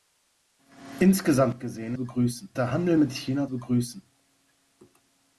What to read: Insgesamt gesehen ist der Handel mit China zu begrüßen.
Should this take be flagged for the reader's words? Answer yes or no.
yes